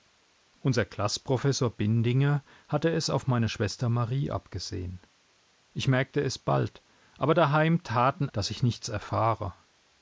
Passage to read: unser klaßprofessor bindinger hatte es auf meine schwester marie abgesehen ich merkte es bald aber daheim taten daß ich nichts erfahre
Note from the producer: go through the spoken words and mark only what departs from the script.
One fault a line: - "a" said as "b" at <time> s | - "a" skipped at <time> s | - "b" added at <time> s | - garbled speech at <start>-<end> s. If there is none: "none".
none